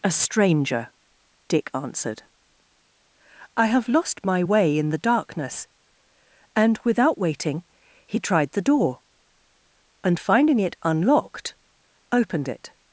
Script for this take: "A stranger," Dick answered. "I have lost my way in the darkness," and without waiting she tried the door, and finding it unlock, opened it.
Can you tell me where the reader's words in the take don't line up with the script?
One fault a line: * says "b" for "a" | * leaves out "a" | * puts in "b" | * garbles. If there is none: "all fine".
* says "he" for "she"
* says "unlocked" for "unlock"